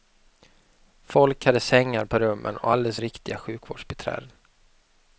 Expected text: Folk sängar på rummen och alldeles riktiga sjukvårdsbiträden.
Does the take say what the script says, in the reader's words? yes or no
no